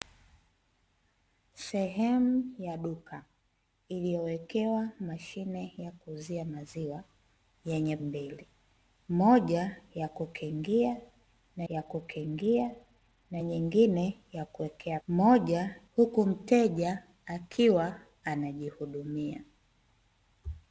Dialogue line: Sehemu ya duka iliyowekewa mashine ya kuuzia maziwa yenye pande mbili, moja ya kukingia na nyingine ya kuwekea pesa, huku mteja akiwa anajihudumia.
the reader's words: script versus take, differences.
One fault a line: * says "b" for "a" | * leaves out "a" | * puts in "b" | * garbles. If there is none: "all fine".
* leaves out "pande"
* puts in "ya kukingia na"
* says "moja" for "pesa"